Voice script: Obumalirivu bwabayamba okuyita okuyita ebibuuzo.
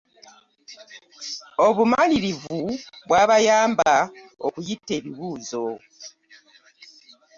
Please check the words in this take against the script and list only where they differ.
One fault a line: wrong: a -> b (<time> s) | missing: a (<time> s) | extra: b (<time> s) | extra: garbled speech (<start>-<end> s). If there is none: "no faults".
missing: okuyita (4.9 s)